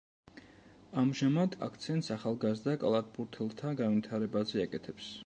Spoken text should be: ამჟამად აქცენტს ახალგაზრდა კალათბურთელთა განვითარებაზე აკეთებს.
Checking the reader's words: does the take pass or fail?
pass